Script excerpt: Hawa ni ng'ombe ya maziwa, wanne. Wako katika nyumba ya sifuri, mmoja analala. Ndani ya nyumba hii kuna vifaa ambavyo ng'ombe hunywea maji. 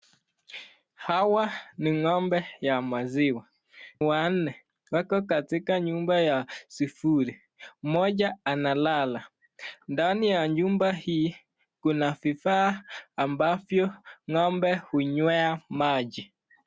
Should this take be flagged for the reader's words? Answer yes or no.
no